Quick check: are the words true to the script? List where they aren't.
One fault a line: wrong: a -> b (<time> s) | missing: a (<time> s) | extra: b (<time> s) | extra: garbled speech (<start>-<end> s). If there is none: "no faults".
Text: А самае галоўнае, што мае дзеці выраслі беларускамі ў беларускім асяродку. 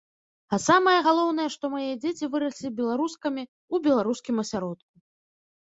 no faults